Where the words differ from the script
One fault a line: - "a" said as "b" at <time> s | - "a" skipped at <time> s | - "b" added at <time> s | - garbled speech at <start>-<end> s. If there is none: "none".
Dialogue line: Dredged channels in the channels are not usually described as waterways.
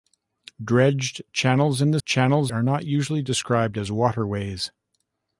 none